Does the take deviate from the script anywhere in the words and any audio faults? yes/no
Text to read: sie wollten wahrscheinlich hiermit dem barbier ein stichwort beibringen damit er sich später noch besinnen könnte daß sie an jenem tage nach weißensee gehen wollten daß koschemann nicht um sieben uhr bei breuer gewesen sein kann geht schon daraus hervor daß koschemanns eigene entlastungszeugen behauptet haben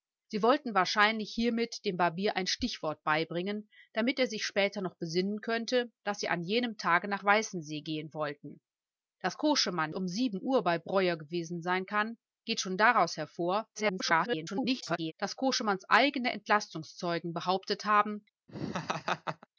yes